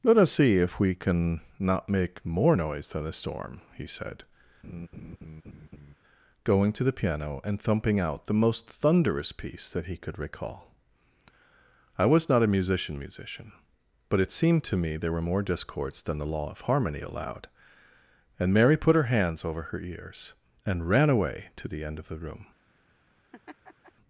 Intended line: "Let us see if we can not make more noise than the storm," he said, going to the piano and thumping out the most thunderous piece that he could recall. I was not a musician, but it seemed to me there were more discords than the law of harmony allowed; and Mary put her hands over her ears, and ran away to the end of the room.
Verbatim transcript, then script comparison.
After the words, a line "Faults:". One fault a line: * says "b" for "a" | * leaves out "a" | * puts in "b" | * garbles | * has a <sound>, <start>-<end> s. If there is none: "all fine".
"Let us see if we can not make more noise than the storm," he said, going to the piano and thumping out the most thunderous piece that he could recall. I was not a musician musician, but it seemed to me there were more discords than the law of harmony allowed; and Mary put her hands over her ears, and ran away to the end of the room.
Faults:
* has a laugh, 4.6-6.0 s
* puts in "musician"
* has a laugh, 23.3-23.9 s